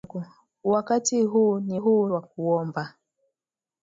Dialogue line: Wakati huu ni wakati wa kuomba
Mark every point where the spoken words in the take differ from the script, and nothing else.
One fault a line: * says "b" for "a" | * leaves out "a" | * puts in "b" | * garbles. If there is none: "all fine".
* says "huu" for "wakati"